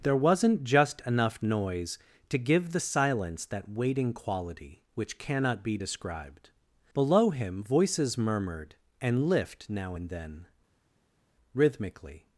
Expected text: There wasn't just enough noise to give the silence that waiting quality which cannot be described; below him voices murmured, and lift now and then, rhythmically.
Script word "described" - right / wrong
right